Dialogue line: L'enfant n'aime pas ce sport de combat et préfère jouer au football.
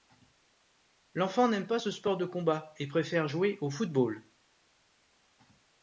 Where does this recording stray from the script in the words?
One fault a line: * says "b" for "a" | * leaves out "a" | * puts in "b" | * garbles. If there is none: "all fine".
all fine